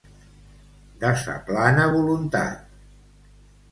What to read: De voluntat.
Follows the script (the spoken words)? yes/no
no